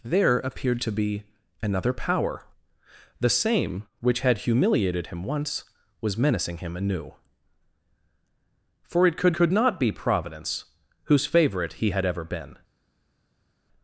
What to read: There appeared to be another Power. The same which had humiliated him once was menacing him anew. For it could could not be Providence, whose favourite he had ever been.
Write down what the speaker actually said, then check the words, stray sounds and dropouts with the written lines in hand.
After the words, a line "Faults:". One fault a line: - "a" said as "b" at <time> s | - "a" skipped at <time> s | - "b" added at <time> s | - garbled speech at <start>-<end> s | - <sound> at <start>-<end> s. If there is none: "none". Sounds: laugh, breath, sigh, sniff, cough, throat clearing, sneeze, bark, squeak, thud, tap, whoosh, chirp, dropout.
There appeared to be another Power. The same which had humiliated him once was menacing him anew. For it could could not be Providence, whose favourite he had ever been.
Faults:
none